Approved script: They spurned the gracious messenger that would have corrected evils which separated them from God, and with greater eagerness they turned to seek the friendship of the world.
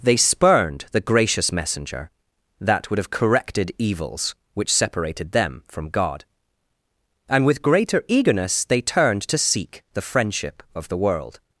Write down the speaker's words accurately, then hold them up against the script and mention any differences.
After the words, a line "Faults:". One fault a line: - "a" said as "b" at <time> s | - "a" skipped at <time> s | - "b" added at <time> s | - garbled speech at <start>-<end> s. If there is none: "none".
They spurned the gracious messenger that would have corrected evils which separated them from God, and with greater eagerness they turned to seek the friendship of the world.
Faults:
none